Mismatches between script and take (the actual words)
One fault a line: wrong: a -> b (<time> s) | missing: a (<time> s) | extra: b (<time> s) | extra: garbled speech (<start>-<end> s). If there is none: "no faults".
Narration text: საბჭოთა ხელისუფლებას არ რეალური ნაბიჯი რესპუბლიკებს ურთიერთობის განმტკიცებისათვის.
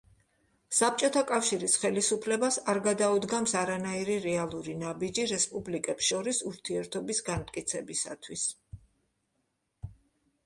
extra: კავშირის (1.3 s)
extra: გადაუდგამს არანაირი (2.9 s)
extra: შორის (6.1 s)